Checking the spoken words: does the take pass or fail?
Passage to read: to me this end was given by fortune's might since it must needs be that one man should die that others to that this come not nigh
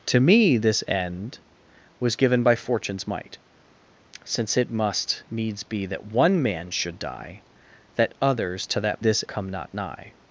pass